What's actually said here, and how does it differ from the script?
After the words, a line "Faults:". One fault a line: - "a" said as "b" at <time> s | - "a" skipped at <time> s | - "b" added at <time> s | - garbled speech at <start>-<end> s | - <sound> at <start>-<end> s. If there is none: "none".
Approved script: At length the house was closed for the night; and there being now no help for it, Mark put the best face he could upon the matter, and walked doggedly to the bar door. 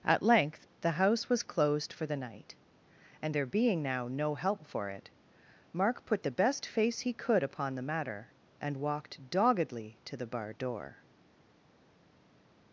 At length the house was closed for the night; and there being now no help for it, Mark put the best face he could upon the matter, and walked doggedly to the bar door.
Faults:
none